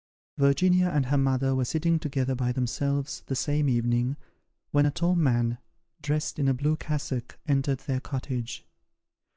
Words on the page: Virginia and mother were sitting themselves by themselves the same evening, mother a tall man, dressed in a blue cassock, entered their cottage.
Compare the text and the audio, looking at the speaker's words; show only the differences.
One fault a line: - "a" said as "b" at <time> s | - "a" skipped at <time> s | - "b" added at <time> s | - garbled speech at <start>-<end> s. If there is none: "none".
- "her" added at 1.1 s
- "themselves" said as "together" at 2.0 s
- "mother" said as "when" at 4.7 s